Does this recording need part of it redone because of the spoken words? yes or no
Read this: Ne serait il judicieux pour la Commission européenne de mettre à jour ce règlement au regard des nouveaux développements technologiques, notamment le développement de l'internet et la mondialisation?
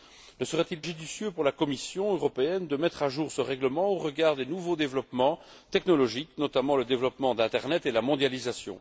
no